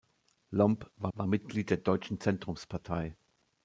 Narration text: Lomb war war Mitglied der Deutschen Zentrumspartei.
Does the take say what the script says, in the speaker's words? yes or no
yes